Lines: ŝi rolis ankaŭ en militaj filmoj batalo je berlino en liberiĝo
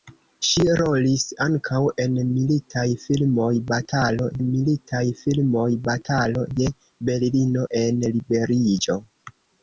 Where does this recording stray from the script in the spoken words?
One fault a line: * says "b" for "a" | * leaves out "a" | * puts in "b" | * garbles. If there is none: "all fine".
* puts in "militaj filmoj batalo"